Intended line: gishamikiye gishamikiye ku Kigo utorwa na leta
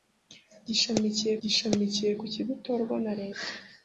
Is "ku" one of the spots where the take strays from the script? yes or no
no